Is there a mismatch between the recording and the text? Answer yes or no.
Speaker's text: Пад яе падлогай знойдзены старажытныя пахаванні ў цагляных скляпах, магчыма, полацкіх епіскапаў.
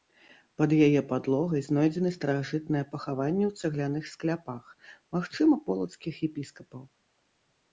no